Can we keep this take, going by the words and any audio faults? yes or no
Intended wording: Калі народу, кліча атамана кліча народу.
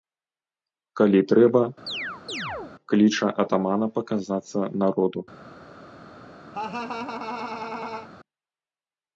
no